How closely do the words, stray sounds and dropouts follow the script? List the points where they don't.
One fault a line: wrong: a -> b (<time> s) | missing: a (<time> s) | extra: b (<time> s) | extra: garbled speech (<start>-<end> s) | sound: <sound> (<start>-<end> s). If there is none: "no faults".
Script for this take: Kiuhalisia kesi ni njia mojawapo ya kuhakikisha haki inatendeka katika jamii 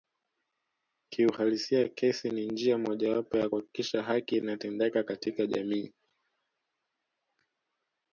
no faults